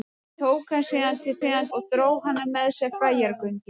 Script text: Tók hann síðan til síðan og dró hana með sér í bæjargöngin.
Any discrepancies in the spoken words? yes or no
no